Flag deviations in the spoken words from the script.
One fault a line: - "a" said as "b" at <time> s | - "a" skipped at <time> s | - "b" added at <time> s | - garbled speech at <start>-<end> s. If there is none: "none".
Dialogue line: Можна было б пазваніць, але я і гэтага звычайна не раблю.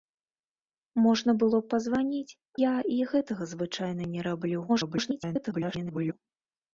- "але" skipped at 2.4 s
- garbled speech at 4.7-6.1 s